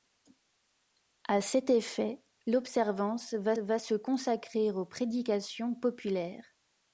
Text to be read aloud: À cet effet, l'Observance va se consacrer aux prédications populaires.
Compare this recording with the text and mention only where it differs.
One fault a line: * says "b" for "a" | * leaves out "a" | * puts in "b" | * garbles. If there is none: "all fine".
* puts in "va"